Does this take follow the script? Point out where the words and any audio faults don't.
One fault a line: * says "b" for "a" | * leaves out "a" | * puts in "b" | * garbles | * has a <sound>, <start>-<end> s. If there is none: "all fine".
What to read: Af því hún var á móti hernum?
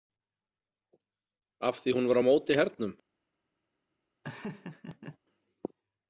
* has a laugh, 4.2-5.2 s